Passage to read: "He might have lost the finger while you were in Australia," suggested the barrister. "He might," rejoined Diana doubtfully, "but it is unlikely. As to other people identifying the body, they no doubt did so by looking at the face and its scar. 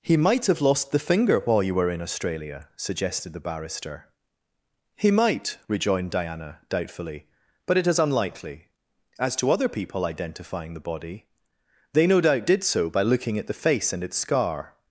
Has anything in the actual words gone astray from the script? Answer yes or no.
no